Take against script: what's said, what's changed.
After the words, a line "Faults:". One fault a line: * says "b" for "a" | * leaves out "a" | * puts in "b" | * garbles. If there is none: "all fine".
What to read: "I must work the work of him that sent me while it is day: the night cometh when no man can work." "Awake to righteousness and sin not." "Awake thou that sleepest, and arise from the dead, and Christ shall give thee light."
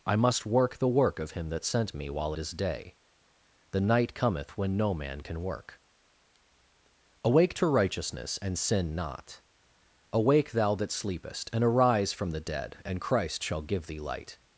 "I must work the work of him that sent me while is day: the night cometh when no man can work." "Awake to righteousness and sin not." "Awake thou that sleepest, and arise from the dead, and Christ shall give thee light."
Faults:
* leaves out "it"